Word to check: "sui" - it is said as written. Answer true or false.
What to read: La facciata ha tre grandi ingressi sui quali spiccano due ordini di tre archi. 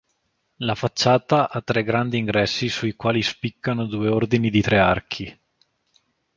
true